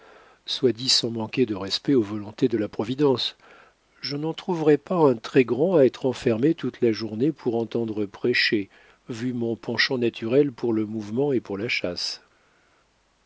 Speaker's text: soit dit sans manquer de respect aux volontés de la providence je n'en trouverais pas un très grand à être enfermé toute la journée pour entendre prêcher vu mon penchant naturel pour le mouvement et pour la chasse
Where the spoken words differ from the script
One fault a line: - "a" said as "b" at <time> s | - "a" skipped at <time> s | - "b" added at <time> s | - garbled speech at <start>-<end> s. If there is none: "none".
none